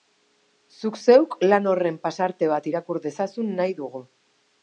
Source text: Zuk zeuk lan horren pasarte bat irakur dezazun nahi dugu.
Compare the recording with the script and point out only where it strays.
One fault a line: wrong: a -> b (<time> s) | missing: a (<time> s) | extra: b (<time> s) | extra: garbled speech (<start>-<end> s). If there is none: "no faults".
no faults